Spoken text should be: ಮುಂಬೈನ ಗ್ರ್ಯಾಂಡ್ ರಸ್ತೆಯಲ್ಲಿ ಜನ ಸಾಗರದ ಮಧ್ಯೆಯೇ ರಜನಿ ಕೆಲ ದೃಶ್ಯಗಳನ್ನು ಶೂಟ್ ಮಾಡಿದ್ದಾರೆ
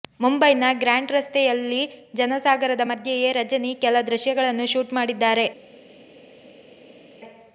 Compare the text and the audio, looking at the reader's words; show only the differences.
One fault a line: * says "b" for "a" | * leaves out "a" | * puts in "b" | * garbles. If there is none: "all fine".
all fine